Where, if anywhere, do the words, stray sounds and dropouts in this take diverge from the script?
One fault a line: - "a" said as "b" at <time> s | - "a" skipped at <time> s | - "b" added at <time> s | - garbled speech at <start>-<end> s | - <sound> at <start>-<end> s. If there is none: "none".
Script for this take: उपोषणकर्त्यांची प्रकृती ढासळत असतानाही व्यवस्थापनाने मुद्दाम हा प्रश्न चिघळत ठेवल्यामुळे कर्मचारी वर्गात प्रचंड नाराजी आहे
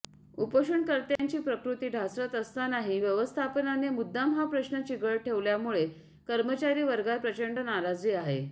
- dropout at 1.2-1.2 s